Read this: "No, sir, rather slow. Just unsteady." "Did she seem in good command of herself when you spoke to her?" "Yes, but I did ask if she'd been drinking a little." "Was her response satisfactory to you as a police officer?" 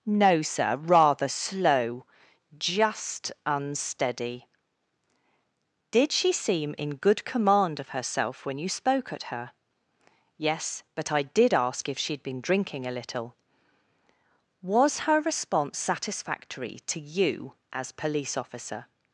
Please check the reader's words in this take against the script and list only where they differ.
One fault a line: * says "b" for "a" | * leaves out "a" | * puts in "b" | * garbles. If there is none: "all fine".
* says "at" for "to"
* leaves out "a"